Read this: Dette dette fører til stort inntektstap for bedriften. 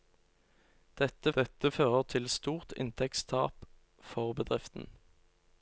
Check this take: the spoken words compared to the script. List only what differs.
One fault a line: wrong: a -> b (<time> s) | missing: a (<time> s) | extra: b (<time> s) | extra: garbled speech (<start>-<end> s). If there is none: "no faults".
no faults